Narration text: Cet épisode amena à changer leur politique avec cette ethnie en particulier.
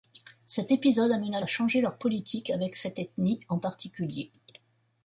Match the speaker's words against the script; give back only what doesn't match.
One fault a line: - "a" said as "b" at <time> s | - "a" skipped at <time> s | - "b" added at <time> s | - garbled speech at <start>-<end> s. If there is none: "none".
none